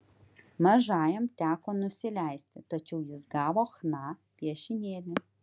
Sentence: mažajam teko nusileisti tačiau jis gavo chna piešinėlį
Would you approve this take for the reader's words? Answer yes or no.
yes